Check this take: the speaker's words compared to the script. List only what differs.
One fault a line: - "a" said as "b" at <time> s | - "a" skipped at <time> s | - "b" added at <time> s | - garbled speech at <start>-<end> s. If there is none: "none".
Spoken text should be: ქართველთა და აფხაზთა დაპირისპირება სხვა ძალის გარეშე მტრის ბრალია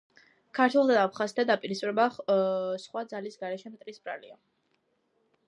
none